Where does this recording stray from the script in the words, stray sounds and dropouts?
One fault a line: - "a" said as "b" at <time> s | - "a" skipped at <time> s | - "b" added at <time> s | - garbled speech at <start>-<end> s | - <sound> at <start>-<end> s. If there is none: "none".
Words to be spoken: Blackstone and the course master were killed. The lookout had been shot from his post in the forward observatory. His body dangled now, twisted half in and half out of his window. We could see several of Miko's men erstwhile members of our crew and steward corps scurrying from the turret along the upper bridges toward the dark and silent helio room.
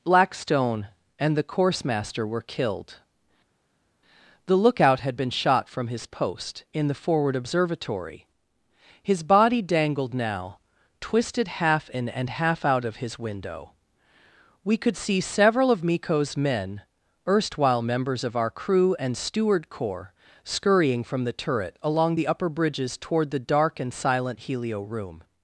none